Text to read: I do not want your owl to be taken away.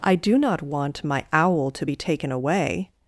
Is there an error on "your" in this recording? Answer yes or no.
yes